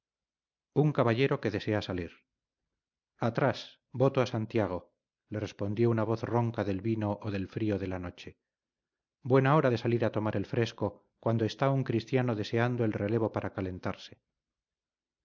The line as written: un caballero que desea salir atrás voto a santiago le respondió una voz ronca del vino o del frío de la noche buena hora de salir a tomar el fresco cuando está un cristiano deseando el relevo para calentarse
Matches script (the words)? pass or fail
pass